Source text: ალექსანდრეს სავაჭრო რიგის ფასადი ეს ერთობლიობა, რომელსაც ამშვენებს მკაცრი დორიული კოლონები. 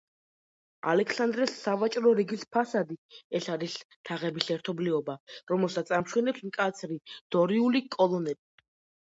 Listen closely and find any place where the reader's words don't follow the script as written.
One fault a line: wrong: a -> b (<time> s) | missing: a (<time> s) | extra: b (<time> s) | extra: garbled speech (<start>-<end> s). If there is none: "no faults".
extra: არის თაღების (3.6 s)